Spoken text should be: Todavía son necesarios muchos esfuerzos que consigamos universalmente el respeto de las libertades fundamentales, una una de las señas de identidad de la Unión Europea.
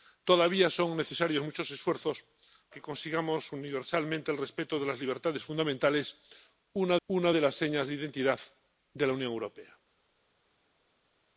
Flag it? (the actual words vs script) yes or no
no